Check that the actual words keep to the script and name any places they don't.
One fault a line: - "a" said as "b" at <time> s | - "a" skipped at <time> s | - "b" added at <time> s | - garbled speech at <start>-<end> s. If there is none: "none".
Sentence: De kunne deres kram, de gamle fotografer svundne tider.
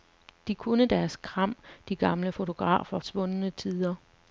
none